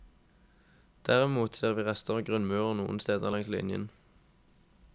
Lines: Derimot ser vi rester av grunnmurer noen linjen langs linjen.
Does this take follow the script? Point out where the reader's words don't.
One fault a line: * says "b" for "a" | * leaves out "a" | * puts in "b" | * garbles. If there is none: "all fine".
* says "steder" for "linjen"